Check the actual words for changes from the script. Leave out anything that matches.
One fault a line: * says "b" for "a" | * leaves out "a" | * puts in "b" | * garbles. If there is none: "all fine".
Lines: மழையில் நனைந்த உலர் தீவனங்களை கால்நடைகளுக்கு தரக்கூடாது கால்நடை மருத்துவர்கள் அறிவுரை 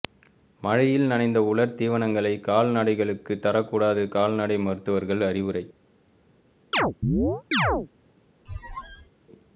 all fine